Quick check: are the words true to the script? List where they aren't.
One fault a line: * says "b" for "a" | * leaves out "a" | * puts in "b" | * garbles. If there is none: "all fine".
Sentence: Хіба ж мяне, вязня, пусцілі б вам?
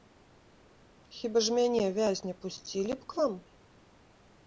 * puts in "к"